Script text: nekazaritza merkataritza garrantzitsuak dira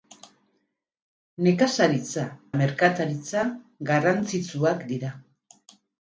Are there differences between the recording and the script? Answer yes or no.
no